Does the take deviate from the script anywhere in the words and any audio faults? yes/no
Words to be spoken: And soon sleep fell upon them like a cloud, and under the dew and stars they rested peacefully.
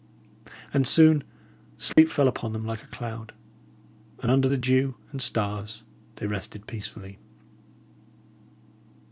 yes